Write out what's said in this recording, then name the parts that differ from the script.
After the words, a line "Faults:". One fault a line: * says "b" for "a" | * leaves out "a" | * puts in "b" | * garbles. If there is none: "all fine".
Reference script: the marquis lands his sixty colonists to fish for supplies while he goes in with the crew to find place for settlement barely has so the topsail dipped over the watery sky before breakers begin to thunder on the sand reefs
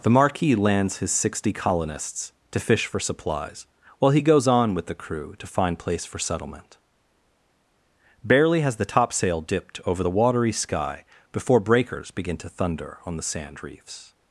the marquis lands his sixty colonists to fish for supplies while he goes on with the crew to find place for settlement barely has the topsail dipped over the watery sky before breakers begin to thunder on the sand reefs
Faults:
* says "on" for "in"
* leaves out "so"